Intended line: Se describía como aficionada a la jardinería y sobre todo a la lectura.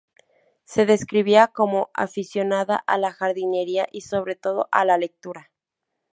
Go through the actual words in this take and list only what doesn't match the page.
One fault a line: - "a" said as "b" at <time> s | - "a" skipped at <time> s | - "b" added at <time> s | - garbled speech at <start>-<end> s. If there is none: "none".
none